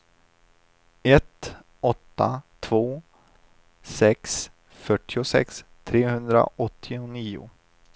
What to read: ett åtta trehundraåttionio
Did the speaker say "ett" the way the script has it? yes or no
yes